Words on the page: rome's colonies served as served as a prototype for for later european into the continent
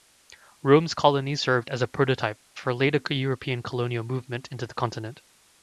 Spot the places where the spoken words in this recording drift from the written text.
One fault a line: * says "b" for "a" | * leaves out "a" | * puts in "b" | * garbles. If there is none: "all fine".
* leaves out "served as"
* leaves out "for"
* puts in "colonial movement"